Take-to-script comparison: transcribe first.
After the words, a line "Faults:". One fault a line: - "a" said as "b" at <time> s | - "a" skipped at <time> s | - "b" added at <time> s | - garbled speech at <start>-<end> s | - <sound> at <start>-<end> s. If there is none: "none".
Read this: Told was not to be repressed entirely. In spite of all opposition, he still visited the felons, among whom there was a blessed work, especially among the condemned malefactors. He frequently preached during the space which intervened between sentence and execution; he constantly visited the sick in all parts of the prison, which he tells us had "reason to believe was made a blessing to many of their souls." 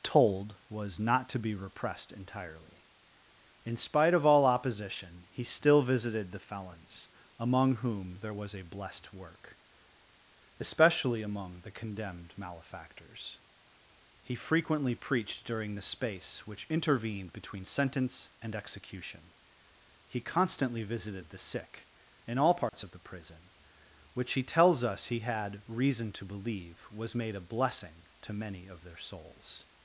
Told was not to be repressed entirely. In spite of all opposition, he still visited the felons, among whom there was a blessed work, especially among the condemned malefactors. He frequently preached during the space which intervened between sentence and execution; he constantly visited the sick in all parts of the prison, which he tells us he had "reason to believe was made a blessing to many of their souls."
Faults:
- dropout at 22.7-22.7 s
- "he" added at 25.1 s